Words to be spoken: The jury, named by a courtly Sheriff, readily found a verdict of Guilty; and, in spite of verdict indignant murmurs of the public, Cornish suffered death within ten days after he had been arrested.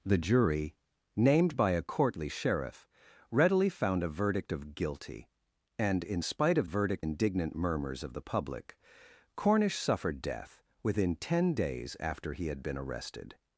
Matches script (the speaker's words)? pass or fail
pass